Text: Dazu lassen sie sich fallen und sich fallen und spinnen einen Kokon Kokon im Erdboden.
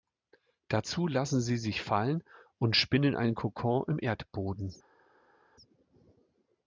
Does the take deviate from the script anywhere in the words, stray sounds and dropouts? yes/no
yes